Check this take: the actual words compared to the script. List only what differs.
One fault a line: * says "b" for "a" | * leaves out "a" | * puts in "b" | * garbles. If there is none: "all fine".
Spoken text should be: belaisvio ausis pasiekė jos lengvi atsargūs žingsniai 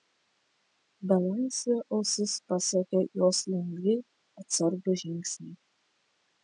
all fine